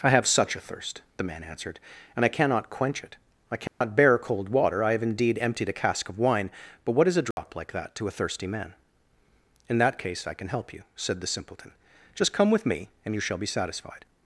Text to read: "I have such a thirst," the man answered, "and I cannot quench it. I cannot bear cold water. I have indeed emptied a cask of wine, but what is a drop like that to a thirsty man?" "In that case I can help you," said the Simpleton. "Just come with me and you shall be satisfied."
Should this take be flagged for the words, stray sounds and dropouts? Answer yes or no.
yes